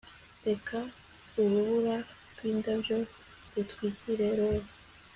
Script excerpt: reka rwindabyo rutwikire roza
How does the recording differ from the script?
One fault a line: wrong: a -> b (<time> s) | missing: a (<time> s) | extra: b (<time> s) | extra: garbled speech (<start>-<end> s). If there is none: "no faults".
extra: urubura (1.4 s)